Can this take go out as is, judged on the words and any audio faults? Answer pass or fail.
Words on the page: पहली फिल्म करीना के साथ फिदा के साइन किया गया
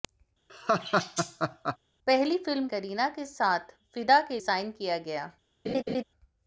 fail